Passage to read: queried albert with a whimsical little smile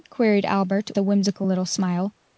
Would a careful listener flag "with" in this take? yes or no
yes